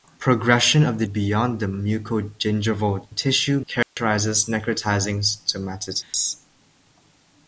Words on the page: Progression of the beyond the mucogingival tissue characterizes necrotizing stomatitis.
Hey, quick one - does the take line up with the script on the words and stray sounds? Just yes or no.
no